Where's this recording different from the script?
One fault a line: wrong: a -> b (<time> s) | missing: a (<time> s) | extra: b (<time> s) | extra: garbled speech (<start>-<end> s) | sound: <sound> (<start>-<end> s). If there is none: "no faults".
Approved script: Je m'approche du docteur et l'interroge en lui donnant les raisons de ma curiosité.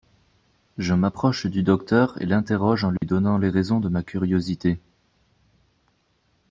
sound: dropout (3.0-3.0 s)